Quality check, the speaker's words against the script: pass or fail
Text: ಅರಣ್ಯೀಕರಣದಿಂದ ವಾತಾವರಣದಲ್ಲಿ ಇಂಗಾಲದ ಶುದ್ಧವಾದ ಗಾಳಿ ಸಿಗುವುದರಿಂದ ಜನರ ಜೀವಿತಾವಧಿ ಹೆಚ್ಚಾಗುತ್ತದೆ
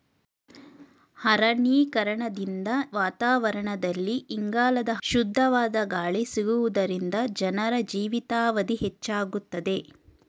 pass